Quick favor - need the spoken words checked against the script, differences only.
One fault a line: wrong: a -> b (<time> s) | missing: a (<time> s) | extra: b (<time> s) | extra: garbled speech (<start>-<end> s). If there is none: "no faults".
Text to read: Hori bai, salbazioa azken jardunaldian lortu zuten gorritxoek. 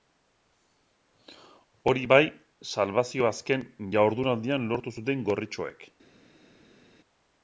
no faults